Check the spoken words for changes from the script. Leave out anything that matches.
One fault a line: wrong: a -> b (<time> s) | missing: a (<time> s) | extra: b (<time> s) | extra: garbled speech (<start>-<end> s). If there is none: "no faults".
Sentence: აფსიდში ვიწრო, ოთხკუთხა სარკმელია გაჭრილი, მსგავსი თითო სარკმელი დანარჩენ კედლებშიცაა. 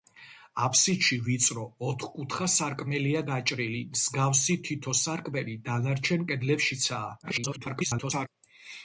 extra: garbled speech (7.2-8.3 s)